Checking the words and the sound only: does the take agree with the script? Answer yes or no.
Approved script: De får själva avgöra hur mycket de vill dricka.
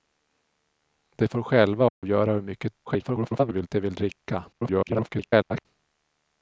no